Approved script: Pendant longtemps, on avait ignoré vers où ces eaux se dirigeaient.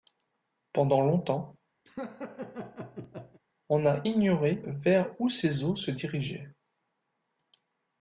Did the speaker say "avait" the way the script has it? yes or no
no